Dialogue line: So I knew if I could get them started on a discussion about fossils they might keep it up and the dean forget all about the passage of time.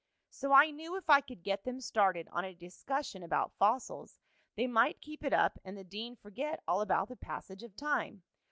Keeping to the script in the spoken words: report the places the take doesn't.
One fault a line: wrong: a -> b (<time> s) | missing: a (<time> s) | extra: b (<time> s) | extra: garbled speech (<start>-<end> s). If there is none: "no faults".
no faults